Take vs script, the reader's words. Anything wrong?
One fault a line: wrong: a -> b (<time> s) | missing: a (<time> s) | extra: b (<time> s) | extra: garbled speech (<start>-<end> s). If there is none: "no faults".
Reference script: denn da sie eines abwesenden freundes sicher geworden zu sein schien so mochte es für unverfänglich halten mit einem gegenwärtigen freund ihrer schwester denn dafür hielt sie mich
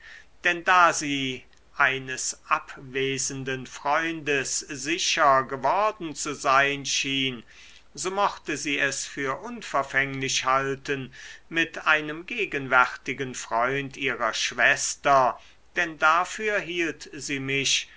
extra: sie (8.6 s)